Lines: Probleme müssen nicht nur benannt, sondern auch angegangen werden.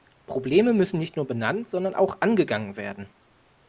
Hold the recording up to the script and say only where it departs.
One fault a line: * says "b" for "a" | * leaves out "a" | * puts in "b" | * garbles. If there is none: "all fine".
all fine